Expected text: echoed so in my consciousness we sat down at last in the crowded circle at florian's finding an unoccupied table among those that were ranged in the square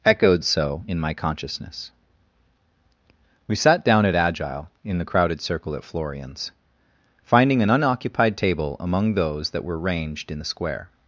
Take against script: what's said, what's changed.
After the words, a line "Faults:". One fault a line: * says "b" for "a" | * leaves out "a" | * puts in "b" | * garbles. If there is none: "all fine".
echoed so in my consciousness we sat down at agile in the crowded circle at florian's finding an unoccupied table among those that were ranged in the square
Faults:
* says "agile" for "last"